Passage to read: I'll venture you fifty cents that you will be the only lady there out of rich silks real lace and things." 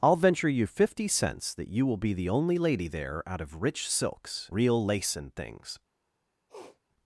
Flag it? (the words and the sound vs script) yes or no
yes